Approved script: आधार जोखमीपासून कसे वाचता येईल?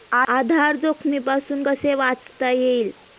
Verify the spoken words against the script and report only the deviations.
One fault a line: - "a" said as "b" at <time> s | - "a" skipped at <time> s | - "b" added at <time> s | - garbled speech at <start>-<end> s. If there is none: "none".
none